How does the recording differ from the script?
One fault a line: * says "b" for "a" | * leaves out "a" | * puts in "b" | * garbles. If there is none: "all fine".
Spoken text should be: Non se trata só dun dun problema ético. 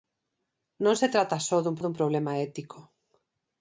all fine